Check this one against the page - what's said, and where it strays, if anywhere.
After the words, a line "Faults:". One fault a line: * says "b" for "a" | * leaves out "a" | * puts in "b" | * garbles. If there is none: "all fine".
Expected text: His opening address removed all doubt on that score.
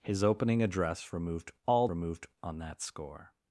His opening address removed all removed on that score.
Faults:
* says "removed" for "doubt"